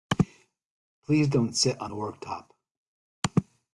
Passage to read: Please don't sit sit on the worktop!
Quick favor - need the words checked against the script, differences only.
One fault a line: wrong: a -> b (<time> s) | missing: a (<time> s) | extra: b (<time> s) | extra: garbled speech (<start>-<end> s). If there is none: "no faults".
missing: sit (1.8 s)